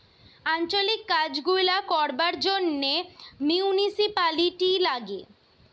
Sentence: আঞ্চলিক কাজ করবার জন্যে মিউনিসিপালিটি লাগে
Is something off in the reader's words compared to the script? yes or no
yes